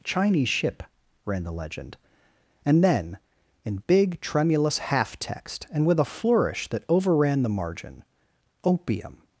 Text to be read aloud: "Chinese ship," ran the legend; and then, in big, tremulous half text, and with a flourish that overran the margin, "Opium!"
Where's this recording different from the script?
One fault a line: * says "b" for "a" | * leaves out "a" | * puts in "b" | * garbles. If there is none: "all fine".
all fine